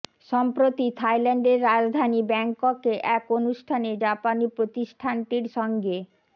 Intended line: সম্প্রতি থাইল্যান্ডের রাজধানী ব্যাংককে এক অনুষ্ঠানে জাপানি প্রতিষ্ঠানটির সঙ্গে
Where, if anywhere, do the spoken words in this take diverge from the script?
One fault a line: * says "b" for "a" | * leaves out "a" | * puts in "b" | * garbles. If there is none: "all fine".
all fine